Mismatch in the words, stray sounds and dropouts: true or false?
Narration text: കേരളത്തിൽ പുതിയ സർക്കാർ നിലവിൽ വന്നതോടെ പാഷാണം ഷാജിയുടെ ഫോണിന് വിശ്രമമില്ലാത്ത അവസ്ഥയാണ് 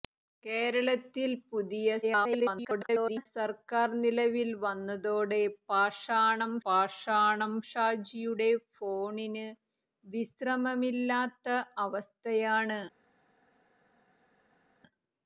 true